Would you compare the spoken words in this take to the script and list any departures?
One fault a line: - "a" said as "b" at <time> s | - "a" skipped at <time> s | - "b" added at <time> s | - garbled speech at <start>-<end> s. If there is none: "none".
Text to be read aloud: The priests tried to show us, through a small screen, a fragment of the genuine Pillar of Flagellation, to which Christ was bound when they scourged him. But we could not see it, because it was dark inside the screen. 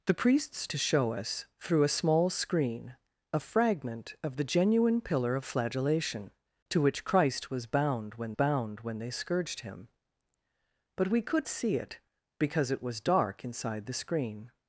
- "tried" skipped at 0.7 s
- "bound when" added at 8.3 s
- "not" skipped at 11.5 s